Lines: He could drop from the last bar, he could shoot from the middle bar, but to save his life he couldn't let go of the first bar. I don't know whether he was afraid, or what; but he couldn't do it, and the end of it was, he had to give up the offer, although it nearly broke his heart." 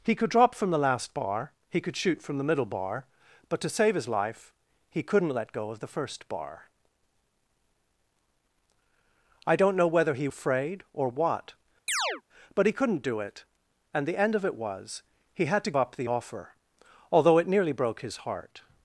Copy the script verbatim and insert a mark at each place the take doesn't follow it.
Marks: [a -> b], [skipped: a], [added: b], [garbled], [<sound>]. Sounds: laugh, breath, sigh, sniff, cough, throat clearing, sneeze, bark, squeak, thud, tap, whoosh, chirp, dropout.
He could drop from the last bar, he could shoot from the middle bar, but to save his life he couldn't let go of the first bar. I don't know whether he [skipped: was] afraid, or what; [chirp] but he couldn't do it, and the end of it was, he had to [skipped: give] up the offer, although it nearly broke his heart."